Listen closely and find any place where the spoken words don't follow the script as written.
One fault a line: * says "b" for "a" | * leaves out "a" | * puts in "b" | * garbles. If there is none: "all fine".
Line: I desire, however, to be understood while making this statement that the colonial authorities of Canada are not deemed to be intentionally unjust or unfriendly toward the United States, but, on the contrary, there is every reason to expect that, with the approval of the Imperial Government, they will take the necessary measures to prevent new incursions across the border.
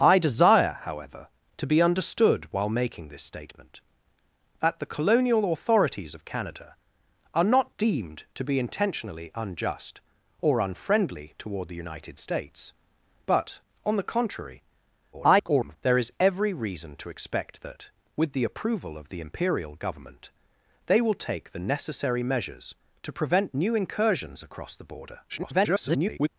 * garbles
* garbles